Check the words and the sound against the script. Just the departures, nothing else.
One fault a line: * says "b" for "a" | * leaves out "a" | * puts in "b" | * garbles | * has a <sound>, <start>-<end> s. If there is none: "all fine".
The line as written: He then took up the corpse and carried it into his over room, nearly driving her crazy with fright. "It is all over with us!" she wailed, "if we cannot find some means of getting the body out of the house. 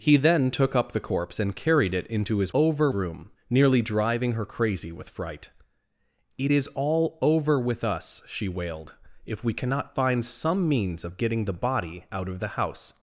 all fine